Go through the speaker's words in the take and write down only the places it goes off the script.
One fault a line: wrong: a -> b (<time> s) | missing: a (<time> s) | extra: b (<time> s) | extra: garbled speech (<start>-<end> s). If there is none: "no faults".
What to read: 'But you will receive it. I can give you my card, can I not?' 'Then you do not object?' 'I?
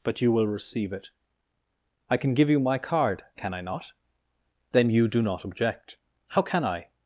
extra: How can (6.3 s)